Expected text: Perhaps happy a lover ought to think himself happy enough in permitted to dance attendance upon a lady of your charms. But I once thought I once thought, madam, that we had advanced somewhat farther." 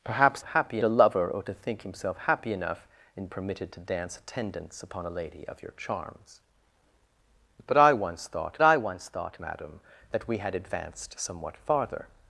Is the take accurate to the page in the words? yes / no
yes